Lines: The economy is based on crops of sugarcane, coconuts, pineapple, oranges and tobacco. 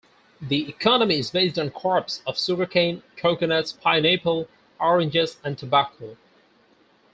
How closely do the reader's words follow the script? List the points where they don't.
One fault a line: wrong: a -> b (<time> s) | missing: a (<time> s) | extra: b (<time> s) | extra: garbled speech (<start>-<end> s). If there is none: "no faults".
no faults